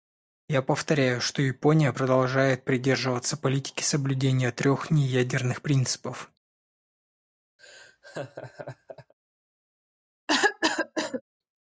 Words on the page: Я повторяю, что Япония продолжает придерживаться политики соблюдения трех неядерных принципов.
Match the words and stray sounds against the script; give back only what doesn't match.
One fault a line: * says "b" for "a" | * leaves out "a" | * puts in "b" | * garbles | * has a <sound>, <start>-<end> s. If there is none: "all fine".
* has a laugh, 7.6-9.1 s
* has a cough, 10.3-11.2 s